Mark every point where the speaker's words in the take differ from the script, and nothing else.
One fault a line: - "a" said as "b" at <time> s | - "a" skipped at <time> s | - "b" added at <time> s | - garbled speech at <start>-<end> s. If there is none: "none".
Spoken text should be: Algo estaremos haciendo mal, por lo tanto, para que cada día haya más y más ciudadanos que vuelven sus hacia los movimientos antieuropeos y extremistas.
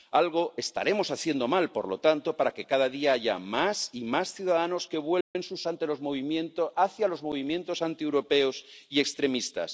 none